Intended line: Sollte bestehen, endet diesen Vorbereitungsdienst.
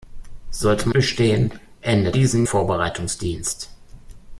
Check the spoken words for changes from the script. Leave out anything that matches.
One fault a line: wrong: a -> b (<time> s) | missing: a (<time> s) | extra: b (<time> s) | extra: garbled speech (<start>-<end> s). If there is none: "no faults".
no faults